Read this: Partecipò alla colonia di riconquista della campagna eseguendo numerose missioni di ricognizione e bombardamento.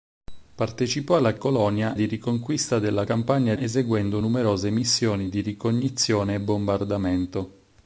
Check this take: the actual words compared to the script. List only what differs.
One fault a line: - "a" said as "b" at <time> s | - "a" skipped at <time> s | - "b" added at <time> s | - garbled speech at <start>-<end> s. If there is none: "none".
none